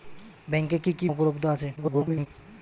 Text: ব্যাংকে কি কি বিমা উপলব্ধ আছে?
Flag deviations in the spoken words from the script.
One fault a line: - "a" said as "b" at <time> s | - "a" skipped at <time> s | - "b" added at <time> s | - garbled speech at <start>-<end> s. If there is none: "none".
- "বিমা" skipped at 1.1 s
- garbled speech at 1.8-2.3 s